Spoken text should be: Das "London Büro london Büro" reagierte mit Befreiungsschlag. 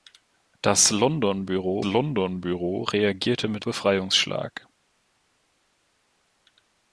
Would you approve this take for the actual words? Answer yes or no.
yes